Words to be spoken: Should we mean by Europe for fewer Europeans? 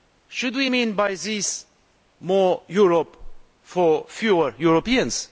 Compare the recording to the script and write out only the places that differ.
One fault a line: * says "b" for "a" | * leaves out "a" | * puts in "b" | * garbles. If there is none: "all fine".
* puts in "this more"